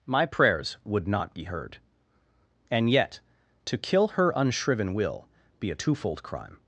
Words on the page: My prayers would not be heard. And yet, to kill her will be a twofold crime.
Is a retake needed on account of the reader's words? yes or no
yes